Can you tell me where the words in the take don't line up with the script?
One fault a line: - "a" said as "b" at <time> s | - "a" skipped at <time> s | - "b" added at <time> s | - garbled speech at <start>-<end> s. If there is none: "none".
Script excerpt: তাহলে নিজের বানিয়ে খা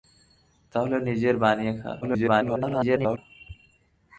- garbled speech at 2.0-3.2 s